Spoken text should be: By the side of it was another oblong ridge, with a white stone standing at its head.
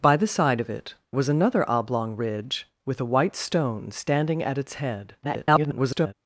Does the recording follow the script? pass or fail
fail